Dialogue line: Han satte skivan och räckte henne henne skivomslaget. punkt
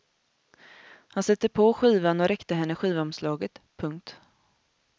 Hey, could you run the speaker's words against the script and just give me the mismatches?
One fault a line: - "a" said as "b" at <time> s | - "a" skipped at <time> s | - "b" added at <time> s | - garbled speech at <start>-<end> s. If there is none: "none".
- "på" added at 1.5 s
- "henne" skipped at 2.8 s